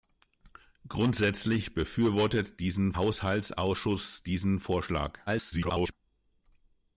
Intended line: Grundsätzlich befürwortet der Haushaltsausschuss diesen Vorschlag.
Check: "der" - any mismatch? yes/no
yes